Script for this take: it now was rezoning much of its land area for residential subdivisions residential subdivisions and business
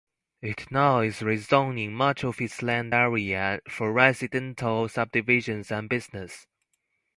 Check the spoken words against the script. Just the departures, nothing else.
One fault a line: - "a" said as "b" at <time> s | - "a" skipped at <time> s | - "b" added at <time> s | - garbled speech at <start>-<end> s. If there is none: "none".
- "was" said as "is" at 1.0 s
- "residential subdivisions" skipped at 5.7 s